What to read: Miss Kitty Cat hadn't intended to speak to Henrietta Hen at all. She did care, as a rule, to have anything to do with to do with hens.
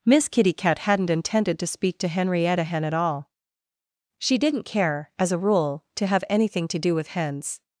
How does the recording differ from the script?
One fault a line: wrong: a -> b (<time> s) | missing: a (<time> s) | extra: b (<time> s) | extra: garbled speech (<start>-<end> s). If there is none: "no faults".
wrong: did -> didn't (4.4 s)
missing: to do with (7.1 s)